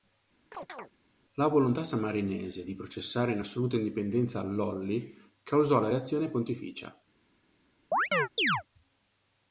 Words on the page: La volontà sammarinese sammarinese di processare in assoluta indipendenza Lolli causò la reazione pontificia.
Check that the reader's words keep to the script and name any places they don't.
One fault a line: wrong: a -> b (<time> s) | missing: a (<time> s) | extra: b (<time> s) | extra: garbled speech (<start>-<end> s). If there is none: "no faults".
missing: sammarinese (2.6 s)